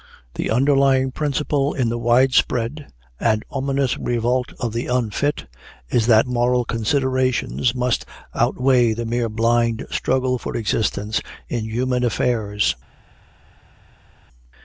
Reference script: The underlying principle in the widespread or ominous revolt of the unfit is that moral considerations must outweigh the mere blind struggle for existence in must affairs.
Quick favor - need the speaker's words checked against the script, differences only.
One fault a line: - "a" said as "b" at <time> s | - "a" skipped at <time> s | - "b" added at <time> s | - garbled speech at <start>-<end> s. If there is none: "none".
- "or" said as "and" at 3.2 s
- "must" said as "human" at 11.6 s